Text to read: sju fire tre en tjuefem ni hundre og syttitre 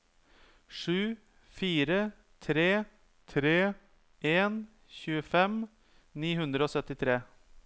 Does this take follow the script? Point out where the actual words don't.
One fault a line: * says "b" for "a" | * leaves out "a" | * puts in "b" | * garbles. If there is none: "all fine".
* puts in "tre"